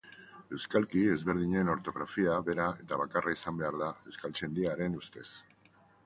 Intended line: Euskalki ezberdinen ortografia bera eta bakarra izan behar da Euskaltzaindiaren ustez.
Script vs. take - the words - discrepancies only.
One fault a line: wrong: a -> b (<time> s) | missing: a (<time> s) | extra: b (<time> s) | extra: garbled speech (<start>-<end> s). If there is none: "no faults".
no faults